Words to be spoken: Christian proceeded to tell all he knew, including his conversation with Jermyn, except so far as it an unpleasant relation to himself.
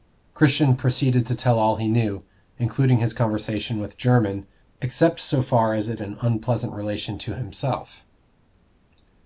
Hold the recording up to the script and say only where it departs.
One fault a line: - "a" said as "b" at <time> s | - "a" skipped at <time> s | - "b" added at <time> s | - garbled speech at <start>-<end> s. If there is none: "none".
none